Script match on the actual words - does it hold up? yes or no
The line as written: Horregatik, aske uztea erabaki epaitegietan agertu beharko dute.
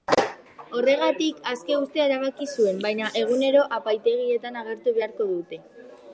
no